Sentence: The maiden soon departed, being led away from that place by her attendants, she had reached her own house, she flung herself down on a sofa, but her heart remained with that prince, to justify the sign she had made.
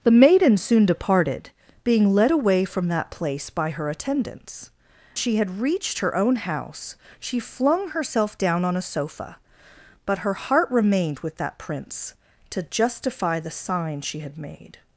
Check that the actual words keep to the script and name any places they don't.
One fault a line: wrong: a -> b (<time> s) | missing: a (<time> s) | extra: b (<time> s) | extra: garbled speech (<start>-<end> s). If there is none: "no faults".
no faults